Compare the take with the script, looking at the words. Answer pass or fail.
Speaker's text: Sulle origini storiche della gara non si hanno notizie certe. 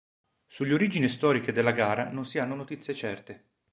pass